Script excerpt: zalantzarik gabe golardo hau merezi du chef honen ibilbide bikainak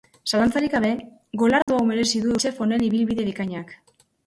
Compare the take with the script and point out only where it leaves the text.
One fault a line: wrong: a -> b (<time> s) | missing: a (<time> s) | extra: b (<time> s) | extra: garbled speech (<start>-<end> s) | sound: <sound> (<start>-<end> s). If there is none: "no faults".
sound: dropout (1.6-1.7 s)